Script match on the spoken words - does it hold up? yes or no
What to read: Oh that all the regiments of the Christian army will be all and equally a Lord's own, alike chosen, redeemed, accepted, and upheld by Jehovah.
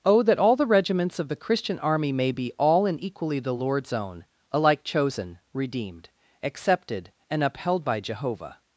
no